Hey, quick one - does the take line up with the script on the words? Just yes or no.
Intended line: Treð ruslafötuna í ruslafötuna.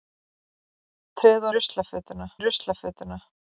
yes